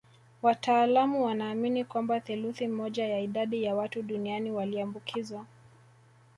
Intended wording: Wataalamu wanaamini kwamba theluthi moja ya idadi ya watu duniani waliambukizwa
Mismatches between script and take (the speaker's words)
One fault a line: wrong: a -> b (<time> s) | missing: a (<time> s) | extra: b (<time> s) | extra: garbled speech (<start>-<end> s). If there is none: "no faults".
no faults